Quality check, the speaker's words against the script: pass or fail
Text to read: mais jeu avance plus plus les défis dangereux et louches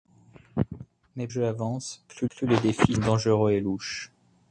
pass